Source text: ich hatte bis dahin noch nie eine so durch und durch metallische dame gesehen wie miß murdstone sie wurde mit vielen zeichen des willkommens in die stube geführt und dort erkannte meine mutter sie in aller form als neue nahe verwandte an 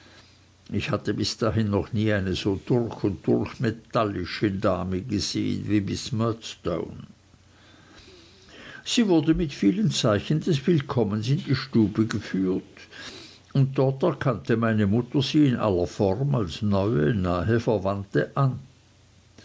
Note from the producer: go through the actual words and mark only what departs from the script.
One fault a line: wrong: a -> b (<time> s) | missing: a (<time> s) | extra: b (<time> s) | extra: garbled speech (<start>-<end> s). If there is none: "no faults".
no faults